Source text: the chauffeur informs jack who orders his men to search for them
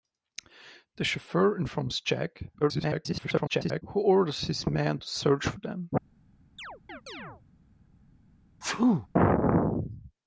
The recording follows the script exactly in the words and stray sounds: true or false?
false